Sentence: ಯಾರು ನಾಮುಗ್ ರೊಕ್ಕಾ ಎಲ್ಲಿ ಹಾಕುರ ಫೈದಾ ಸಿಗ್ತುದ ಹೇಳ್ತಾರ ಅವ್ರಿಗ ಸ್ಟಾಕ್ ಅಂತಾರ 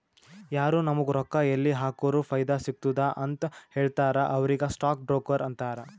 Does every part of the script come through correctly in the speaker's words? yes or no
no